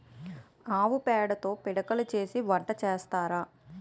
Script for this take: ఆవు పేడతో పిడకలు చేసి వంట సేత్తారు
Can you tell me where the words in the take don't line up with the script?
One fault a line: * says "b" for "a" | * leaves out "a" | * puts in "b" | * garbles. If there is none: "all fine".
all fine